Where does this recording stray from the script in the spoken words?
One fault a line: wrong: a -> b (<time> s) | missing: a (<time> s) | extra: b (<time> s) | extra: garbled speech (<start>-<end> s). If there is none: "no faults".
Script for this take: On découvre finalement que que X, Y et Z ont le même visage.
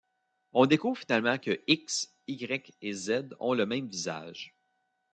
missing: que (1.6 s)